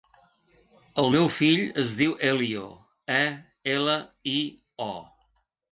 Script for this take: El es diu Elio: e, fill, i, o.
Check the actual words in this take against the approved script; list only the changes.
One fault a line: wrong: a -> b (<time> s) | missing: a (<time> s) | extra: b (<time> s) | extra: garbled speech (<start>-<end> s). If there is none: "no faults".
extra: meu fill (1.1 s)
wrong: fill -> ela (3.8 s)